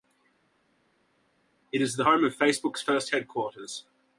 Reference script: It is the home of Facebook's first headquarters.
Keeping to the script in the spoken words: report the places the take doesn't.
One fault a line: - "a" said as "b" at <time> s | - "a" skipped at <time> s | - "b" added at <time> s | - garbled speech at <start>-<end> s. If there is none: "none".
none